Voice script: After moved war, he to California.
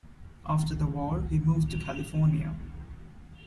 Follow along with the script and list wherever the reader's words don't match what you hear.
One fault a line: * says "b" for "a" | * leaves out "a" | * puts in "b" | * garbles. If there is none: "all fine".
* says "the" for "moved"
* puts in "moved"